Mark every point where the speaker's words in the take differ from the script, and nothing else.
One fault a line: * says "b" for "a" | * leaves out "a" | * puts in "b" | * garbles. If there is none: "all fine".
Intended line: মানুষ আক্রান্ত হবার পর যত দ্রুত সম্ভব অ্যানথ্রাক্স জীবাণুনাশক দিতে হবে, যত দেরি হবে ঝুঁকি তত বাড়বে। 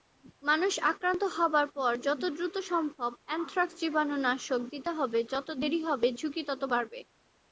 all fine